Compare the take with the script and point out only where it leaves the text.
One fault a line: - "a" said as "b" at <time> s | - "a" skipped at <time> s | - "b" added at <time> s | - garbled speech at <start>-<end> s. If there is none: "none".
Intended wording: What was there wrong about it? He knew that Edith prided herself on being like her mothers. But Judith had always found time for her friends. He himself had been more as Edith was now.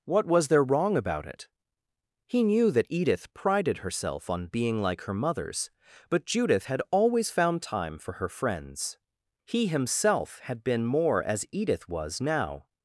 none